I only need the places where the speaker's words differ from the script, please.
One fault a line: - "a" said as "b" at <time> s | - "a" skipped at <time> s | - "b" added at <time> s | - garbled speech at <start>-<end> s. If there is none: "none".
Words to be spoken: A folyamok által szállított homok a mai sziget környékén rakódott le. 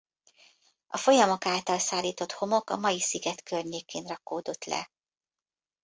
none